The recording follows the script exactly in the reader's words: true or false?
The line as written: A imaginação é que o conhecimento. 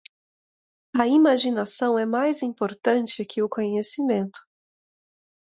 false